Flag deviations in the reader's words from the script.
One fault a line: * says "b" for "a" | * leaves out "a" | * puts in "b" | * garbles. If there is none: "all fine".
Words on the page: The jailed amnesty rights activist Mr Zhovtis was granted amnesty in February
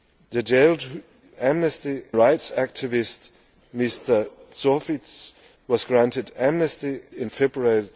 all fine